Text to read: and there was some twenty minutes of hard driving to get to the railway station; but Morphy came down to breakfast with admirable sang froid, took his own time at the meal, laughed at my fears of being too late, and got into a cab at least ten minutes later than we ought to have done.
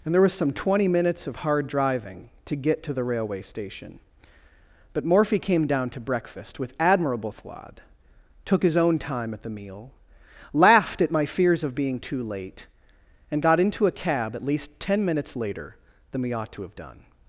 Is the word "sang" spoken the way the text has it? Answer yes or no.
no